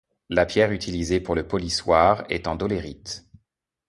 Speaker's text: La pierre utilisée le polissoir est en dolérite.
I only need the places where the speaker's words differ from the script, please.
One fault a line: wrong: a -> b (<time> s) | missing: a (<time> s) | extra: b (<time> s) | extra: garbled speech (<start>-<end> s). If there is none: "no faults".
extra: pour (1.2 s)